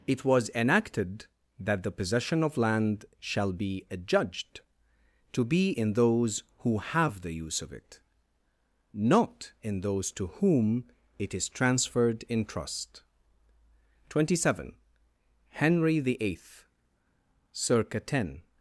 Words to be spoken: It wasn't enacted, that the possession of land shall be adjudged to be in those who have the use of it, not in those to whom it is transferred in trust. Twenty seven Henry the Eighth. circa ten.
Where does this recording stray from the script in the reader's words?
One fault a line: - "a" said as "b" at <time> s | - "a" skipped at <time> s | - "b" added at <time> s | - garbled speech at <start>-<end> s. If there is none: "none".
- "wasn't" said as "was" at 0.2 s